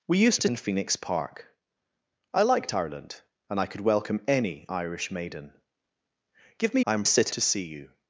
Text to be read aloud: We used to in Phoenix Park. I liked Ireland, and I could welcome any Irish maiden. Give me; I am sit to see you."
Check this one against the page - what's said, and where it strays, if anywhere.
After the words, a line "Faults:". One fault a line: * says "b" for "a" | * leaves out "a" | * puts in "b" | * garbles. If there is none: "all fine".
We used to in Phoenix Park. I liked Ireland, and I could welcome any Irish maiden. Give me; I am sit to see you."
Faults:
all fine